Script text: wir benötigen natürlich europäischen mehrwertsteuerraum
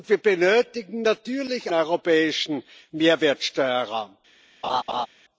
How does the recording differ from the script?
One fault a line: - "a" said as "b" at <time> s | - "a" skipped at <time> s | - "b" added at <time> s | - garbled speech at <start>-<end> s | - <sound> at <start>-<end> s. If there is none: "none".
- laugh at 4.6-5.1 s